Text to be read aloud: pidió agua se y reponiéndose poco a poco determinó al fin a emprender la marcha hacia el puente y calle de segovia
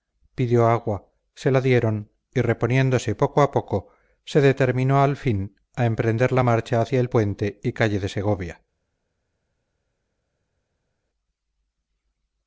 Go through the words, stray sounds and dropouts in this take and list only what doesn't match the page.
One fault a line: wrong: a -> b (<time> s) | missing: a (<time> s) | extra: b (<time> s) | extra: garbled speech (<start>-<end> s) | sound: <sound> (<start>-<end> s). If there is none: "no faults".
extra: la dieron (1.5 s)
extra: se (4.2 s)